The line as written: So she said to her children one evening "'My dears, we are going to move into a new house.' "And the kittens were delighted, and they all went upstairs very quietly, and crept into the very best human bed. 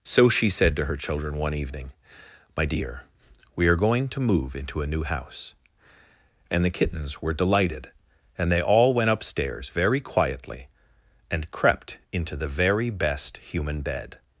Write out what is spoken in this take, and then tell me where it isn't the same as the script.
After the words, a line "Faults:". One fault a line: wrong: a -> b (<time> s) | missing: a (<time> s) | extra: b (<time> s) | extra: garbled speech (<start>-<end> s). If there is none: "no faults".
So she said to her children one evening "'My dear, we are going to move into a new house.' "And the kittens were delighted, and they all went upstairs very quietly, and crept into the very best human bed.
Faults:
wrong: dears -> dear (2.6 s)